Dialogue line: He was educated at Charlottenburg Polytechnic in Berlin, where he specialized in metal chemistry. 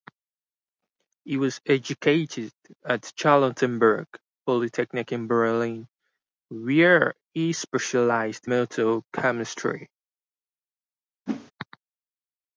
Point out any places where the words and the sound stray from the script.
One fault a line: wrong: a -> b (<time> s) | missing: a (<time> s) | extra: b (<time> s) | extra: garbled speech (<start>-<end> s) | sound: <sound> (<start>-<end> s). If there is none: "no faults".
missing: in (8.5 s)
sound: whoosh (11.3-11.5 s)